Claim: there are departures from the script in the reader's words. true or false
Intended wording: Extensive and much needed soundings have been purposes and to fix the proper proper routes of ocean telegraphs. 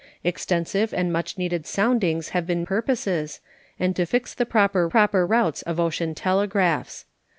false